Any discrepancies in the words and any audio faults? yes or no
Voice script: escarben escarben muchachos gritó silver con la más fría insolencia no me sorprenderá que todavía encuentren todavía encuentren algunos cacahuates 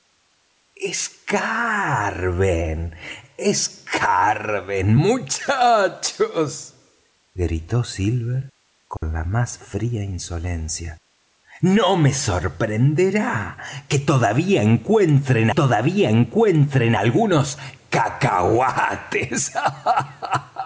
yes